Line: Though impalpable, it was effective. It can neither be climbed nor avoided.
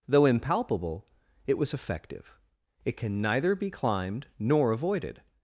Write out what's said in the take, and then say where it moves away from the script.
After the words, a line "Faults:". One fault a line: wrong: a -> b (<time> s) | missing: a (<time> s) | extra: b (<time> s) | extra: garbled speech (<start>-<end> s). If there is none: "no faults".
Though impalpable, it was effective. It can neither be climbed nor avoided.
Faults:
no faults